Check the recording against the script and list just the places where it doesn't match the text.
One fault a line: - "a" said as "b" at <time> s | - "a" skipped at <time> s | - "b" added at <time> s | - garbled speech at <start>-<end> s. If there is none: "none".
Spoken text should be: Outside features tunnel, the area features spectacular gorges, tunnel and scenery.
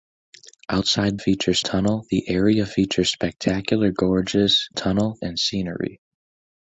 none